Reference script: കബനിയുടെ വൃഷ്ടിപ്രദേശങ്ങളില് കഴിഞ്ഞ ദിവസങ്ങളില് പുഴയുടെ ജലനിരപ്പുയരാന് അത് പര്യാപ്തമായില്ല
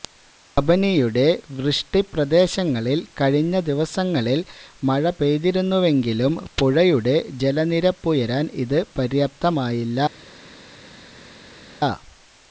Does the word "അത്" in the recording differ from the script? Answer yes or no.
yes